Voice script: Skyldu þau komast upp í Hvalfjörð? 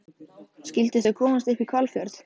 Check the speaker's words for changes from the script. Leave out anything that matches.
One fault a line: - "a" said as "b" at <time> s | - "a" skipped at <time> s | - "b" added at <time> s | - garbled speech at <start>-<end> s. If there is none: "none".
none